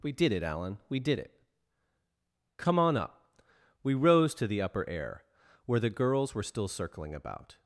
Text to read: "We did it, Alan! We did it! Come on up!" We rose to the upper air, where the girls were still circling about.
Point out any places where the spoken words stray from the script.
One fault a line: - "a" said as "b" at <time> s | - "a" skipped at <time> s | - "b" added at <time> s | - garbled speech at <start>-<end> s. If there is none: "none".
none